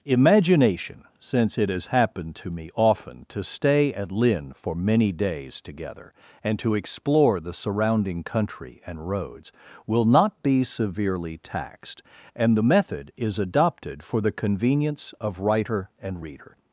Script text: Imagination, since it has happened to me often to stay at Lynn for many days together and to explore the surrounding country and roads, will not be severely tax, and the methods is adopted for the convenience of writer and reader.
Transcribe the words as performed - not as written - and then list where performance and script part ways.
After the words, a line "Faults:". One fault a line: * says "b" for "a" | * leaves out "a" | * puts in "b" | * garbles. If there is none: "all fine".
Imagination, since it has happened to me often to stay at Lynn for many days together and to explore the surrounding country and roads, will not be severely taxed, and the method is adopted for the convenience of writer and reader.
Faults:
* says "taxed" for "tax"
* says "method" for "methods"